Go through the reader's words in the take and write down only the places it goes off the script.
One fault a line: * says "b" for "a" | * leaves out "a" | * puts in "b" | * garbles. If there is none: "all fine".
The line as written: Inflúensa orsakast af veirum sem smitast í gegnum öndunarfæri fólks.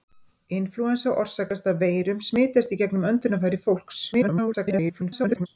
* leaves out "sem"
* garbles